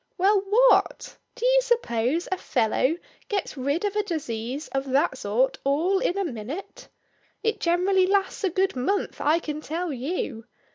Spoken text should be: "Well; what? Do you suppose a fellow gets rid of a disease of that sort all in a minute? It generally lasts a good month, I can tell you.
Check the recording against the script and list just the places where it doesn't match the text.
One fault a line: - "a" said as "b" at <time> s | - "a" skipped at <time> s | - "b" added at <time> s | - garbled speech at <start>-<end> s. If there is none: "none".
none